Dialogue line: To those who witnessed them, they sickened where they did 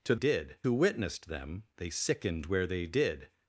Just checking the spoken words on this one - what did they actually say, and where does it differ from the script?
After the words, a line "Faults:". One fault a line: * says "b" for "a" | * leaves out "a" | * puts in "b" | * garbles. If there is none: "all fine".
To did who witnessed them, they sickened where they did
Faults:
* says "did" for "those"